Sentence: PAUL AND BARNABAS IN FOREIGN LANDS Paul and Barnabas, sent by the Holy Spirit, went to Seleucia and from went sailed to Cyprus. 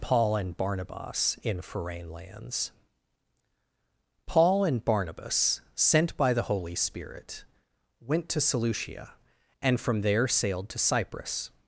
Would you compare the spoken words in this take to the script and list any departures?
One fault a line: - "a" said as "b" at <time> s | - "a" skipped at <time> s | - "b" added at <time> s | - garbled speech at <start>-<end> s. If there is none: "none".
- "went" said as "there" at 10.0 s